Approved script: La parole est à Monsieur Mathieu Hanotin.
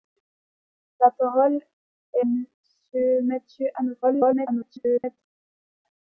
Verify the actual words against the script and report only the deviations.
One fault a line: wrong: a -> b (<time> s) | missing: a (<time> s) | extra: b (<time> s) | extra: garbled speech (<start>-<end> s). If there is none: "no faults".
missing: à (2.2 s)
extra: garbled speech (4.0-5.2 s)